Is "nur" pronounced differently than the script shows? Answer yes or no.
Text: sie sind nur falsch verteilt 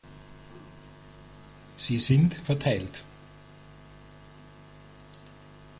yes